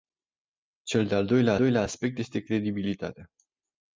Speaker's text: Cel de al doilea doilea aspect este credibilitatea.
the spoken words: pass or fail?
pass